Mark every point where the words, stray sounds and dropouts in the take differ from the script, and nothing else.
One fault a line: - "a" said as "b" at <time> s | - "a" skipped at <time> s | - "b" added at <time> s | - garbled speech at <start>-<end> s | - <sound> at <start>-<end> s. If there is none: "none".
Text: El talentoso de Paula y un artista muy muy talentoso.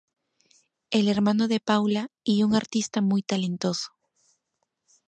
- "talentoso" said as "hermano" at 1.1 s
- "muy" skipped at 3.2 s